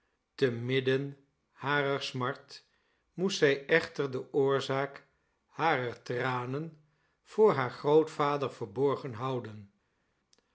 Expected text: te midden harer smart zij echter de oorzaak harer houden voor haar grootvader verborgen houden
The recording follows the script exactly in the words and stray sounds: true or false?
false